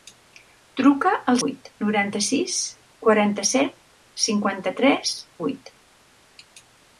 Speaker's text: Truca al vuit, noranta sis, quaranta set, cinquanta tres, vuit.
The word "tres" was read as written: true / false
true